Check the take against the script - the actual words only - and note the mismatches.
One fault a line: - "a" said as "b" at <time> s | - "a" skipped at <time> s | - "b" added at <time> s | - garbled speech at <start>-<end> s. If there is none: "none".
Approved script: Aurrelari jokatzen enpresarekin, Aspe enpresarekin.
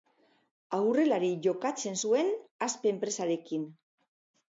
- "enpresarekin" said as "zuen" at 2.0 s